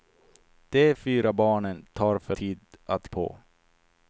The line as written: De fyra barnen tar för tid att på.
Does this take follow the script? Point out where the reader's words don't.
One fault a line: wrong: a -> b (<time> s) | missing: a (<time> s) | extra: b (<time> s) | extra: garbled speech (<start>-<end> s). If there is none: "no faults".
no faults